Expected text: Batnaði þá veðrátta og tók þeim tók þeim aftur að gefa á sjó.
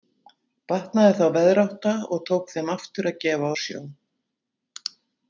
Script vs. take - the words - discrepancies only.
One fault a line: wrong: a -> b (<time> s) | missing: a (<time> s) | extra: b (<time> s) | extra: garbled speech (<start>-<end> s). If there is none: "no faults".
missing: tók þeim (2.7 s)